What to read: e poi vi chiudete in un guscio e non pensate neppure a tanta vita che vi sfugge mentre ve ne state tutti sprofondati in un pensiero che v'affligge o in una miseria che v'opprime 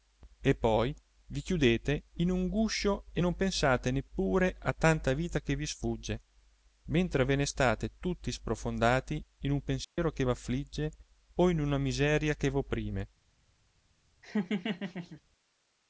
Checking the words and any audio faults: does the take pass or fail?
fail